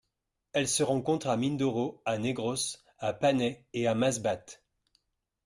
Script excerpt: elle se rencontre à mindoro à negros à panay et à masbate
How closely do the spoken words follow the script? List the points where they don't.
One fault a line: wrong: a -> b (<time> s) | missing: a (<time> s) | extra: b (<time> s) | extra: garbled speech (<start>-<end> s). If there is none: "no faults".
no faults